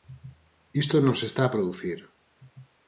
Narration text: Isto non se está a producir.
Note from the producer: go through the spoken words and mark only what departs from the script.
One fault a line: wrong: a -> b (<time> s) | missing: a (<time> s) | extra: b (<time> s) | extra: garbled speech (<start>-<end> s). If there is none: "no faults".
no faults